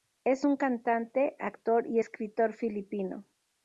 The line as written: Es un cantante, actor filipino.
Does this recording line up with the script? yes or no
no